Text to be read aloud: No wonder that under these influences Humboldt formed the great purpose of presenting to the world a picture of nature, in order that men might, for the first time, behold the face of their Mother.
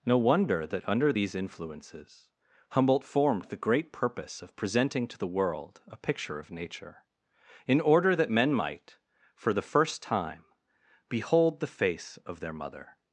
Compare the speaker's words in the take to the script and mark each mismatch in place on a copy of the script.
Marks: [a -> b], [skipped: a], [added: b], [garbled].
No wonder that under these influences Humboldt formed the great purpose of presenting to the world a picture of nature, in order that men might, for the first time, behold the face of their Mother.